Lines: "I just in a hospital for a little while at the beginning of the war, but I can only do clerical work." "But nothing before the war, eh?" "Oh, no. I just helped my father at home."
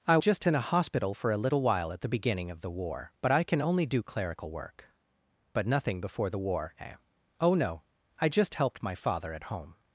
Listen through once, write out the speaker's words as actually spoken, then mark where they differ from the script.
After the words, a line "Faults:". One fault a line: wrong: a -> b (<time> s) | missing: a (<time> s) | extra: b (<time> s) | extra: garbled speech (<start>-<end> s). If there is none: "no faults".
"I just in a hospital for a little while at the beginning of the war, but I can only do clerical work." "But nothing before the war, eh?" "Oh, no. I just helped my father at home."
Faults:
no faults